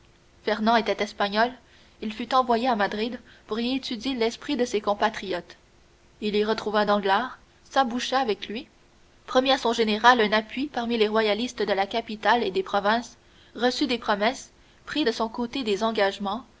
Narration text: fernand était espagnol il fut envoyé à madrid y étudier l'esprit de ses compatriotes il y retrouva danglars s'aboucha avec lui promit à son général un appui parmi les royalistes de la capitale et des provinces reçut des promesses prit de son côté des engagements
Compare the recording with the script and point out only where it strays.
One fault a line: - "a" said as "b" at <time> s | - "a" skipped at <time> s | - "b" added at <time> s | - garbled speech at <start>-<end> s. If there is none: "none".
- "pour" added at 3.5 s